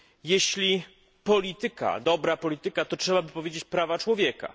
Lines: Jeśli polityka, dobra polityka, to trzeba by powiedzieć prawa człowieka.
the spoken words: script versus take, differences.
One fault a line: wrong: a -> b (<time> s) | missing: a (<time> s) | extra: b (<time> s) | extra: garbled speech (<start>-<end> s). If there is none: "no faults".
no faults